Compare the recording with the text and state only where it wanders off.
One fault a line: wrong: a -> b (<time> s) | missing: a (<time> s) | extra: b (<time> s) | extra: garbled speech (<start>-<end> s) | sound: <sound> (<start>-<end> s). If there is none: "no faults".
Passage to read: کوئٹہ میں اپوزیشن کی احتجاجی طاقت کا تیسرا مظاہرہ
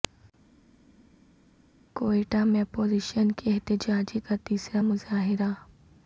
missing: طاقت (4.2 s)